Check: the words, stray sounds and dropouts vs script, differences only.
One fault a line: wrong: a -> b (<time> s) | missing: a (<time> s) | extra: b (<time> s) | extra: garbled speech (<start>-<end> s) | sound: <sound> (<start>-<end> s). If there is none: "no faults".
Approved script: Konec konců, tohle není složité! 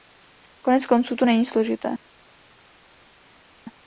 wrong: tohle -> to (1.1 s)